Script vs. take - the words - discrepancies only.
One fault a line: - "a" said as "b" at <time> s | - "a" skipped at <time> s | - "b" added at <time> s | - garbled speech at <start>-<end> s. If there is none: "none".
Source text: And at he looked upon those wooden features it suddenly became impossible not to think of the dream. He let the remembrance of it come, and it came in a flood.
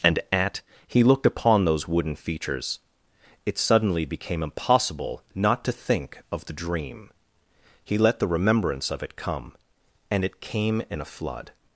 none